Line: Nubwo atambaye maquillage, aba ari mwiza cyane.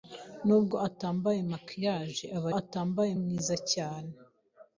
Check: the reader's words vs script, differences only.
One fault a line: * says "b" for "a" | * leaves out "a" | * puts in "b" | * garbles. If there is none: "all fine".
* says "atambaye" for "ari"